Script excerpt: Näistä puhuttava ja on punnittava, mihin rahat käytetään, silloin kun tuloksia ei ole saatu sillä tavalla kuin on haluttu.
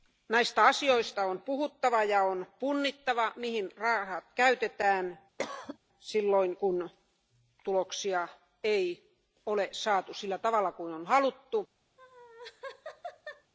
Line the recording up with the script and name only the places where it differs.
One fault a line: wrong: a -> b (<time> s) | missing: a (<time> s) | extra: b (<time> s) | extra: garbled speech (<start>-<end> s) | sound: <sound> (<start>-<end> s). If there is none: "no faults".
extra: asioista on (0.7 s)
sound: cough (5.4-5.8 s)
sound: laugh (12.0-13.5 s)